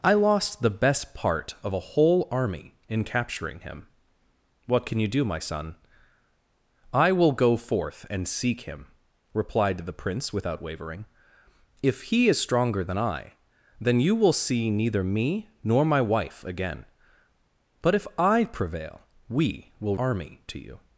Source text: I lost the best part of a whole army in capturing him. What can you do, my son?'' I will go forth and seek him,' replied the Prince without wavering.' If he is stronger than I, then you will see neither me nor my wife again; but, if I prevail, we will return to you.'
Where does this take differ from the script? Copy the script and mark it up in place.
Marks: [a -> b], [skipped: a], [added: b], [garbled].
I lost the best part of a whole army in capturing him. What can you do, my son?'' I will go forth and seek him,' replied the Prince without wavering.' If he is stronger than I, then you will see neither me nor my wife again; but, if I prevail, we will [return -> army] to you.'